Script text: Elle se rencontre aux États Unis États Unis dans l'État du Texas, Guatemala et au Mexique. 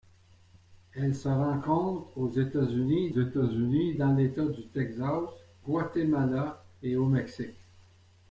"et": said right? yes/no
yes